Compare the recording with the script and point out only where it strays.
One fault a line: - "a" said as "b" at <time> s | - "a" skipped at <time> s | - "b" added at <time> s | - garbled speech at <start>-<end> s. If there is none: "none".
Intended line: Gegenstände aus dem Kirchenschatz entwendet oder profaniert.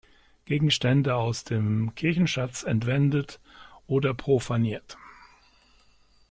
none